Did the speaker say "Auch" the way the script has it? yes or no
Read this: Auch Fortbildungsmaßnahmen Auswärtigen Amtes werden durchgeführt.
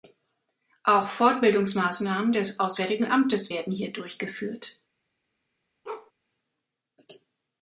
yes